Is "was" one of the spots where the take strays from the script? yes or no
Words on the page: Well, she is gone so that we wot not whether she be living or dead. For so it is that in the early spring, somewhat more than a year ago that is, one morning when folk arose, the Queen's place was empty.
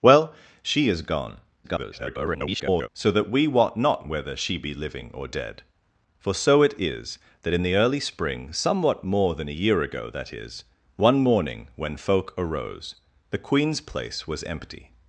no